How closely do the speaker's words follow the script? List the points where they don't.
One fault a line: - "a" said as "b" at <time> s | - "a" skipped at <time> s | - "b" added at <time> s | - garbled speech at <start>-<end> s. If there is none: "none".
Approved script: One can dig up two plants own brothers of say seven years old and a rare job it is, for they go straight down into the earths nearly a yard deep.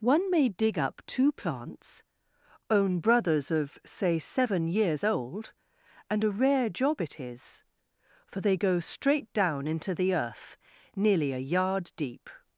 - "can" said as "may" at 0.3 s
- "earths" said as "earth" at 10.1 s